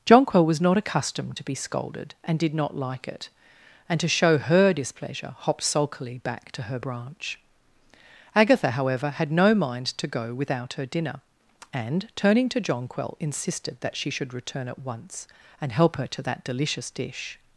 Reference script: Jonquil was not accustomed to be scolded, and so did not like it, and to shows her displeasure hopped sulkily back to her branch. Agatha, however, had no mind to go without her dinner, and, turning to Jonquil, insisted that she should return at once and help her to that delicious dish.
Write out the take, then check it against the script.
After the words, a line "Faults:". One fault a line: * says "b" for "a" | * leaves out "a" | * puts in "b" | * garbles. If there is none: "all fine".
Jonquil was not accustomed to be scolded, and did not like it, and to show her displeasure hopped sulkily back to her branch. Agatha, however, had no mind to go without her dinner, and, turning to Jonquil, insisted that she should return at once and help her to that delicious dish.
Faults:
* leaves out "so"
* says "show" for "shows"